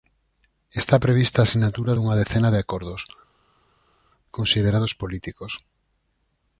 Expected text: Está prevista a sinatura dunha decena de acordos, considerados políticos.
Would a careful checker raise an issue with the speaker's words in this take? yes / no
no